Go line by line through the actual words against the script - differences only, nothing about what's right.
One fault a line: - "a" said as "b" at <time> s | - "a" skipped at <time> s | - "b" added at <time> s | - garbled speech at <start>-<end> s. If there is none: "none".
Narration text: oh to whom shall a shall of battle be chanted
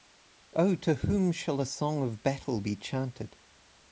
- "shall" said as "song" at 1.7 s